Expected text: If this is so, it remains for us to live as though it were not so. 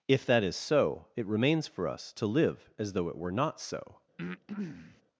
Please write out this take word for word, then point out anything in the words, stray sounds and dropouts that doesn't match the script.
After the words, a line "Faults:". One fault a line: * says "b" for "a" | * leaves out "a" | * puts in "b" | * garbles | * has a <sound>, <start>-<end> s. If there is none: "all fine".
If that is so, it remains for us to live as though it were not so.
Faults:
* says "that" for "this"
* has a breath, 4.2-5.0 s